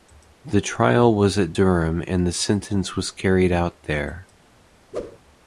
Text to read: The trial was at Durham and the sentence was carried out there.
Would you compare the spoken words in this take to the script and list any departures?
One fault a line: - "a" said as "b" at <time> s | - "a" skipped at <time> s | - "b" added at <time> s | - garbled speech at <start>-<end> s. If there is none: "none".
none